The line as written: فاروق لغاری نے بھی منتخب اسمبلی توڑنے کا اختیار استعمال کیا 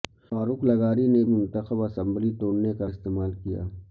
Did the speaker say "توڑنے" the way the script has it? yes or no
yes